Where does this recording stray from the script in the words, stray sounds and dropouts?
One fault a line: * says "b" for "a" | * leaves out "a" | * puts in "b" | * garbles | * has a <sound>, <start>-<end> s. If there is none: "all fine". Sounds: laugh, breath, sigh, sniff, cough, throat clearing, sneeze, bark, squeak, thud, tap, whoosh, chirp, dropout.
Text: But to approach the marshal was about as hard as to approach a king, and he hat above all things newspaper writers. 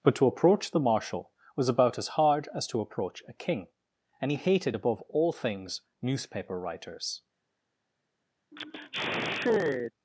* says "hated" for "hat"
* has a sigh, 8.5-9.9 s